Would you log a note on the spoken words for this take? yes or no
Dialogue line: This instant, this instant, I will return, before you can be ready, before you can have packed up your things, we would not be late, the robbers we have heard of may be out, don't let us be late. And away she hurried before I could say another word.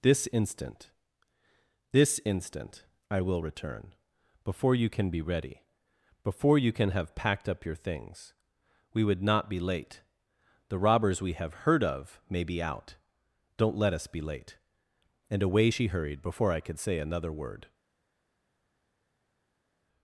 no